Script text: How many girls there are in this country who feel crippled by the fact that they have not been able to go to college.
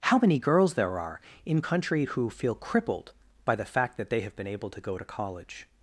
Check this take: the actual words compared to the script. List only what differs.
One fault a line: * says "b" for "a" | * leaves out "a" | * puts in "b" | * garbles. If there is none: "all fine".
* leaves out "this"
* leaves out "not"